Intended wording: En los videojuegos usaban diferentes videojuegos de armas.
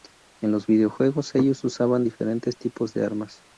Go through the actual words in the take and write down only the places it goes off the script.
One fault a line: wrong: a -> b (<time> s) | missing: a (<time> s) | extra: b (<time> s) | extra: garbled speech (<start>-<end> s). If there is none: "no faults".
extra: ellos (1.4 s)
wrong: videojuegos -> tipos (2.6 s)